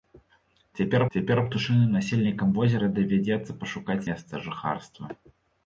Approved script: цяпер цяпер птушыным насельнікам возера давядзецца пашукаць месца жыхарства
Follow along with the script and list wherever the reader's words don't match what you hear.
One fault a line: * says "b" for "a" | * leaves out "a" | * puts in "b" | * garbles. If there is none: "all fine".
all fine